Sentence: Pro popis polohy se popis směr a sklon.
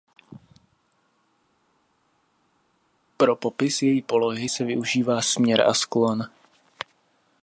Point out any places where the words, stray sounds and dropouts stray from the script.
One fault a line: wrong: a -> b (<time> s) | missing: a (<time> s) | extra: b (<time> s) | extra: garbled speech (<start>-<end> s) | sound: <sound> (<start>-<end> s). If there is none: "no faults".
extra: její (3.8 s)
wrong: popis -> využívá (4.6 s)